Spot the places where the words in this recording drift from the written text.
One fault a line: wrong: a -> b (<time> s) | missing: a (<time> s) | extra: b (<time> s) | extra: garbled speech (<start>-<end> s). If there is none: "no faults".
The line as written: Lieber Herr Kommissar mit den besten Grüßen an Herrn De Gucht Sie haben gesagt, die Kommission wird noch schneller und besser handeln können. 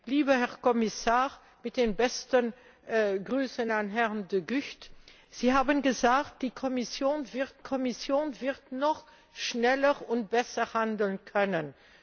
extra: Kommission wird (7.6 s)